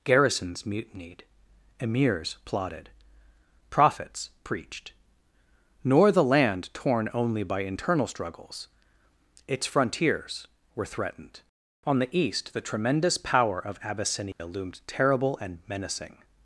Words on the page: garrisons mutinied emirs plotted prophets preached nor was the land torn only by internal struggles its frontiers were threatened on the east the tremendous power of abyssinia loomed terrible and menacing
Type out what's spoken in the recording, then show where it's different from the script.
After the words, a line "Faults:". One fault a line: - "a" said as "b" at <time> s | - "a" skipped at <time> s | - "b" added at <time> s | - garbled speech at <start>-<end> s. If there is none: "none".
garrisons mutinied emirs plotted prophets preached nor the land torn only by internal struggles its frontiers were threatened on the east the tremendous power of abyssinia loomed terrible and menacing
Faults:
- "was" skipped at 6.1 s